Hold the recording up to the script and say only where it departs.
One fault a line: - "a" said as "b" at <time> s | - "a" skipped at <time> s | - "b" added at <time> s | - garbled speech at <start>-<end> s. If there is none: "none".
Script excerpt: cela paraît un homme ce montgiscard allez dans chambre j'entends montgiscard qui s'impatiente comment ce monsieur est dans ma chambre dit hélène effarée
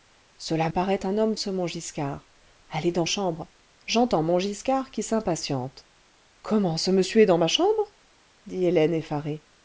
none